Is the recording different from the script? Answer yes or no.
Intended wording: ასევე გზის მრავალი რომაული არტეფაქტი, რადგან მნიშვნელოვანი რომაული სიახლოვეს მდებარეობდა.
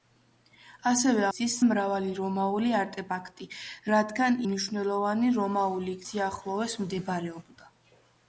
no